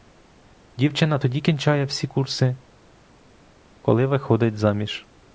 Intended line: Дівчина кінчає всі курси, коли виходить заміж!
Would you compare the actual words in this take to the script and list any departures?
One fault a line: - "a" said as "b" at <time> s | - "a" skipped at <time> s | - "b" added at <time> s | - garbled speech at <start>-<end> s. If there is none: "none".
- "тоді" added at 1.2 s